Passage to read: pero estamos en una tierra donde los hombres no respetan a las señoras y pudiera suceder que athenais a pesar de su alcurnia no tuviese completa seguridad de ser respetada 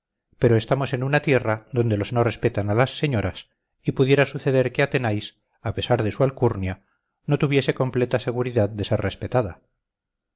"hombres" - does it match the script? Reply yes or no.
no